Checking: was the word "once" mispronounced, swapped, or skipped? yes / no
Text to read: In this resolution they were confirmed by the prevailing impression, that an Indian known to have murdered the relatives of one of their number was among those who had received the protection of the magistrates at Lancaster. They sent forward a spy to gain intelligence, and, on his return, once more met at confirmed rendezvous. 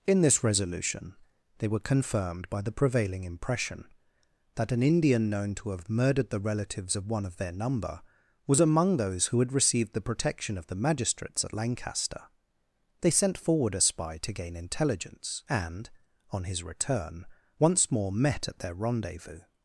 no